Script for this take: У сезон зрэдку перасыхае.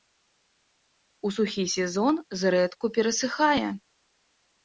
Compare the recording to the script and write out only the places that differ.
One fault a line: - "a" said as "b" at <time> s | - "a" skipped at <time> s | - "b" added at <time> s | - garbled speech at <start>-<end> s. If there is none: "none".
- "сухі" added at 1.4 s